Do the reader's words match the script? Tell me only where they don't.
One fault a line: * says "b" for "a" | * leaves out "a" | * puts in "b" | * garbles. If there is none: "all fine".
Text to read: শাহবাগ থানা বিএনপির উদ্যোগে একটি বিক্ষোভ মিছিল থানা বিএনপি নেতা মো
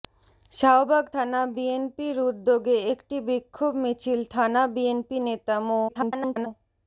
* garbles